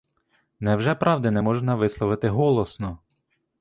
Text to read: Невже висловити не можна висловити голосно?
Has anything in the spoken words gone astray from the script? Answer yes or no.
yes